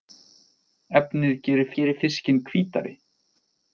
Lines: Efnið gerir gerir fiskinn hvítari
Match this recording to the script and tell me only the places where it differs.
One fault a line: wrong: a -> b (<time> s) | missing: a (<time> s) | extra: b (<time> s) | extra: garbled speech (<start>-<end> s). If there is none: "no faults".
no faults